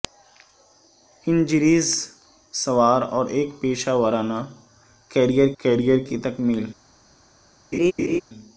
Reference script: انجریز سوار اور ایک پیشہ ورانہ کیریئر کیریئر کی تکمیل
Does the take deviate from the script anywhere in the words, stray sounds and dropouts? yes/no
yes